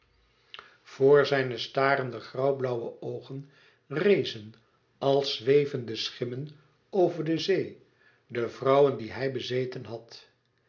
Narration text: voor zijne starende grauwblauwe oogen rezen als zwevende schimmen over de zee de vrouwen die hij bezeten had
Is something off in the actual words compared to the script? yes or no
no